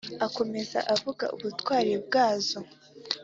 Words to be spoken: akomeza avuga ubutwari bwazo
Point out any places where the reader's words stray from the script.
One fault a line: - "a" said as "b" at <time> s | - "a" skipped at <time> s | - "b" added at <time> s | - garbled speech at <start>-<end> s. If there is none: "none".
none